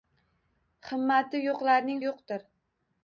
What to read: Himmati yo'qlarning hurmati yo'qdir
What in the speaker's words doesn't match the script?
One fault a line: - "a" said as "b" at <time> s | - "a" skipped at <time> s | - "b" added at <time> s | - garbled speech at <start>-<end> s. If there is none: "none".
- "hurmati" skipped at 2.0 s